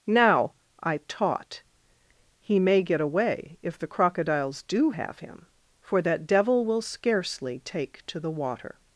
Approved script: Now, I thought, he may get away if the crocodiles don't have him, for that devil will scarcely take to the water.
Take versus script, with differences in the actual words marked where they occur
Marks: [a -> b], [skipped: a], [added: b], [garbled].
Now, I [thought, -> taught] he may get away if the crocodiles [don't -> do] have him, for that devil will scarcely take to the water.